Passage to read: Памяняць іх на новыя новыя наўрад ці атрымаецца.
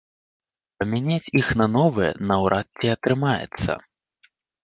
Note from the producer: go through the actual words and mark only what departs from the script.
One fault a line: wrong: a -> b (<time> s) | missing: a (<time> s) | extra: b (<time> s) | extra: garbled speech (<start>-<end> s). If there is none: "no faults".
missing: новыя (2.1 s)